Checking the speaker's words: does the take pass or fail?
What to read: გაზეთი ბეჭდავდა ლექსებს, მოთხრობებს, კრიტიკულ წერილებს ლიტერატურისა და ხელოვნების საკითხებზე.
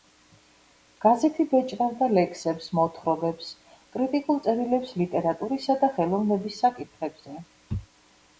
pass